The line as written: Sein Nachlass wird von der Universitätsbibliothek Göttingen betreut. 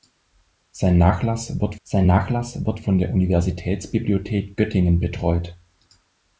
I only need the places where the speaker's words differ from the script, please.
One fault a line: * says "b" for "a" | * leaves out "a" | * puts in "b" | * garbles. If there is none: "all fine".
* puts in "sein Nachlass wird"